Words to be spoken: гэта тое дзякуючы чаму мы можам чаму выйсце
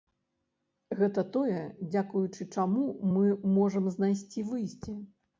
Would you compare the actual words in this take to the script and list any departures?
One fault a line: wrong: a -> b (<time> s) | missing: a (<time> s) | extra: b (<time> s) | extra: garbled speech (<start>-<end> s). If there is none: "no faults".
wrong: чаму -> знайсці (4.0 s)